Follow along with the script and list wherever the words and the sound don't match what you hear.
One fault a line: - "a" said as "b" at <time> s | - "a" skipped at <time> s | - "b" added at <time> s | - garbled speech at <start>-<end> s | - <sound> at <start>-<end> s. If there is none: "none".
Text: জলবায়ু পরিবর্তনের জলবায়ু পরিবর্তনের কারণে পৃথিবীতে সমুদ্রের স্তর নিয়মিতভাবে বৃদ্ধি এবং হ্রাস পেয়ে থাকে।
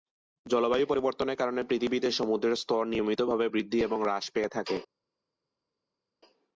- "জলবায়ু পরিবর্তনের" skipped at 1.4 s